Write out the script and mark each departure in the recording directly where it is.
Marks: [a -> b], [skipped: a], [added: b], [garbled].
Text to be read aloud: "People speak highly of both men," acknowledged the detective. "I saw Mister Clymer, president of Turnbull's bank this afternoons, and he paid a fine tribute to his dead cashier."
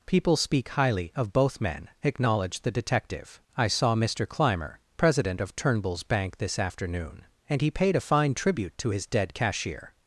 "People speak highly of both men," acknowledged the detective. "I saw Mister Clymer, president of Turnbull's bank this [afternoons, -> afternoon] and he paid a fine tribute to his dead cashier."